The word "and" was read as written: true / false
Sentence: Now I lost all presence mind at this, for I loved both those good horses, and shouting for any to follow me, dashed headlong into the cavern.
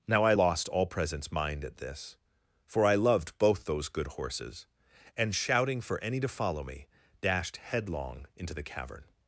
true